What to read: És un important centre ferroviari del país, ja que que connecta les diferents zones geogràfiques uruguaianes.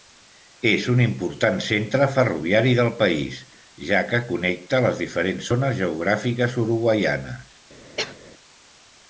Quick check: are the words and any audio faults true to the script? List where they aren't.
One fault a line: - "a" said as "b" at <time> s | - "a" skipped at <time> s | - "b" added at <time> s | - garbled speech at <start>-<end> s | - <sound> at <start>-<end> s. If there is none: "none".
- "que" skipped at 4.2 s
- cough at 8.0-8.2 s